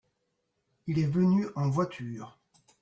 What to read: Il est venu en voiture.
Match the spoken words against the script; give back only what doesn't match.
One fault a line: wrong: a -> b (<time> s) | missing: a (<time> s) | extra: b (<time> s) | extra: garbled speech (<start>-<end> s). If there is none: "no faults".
no faults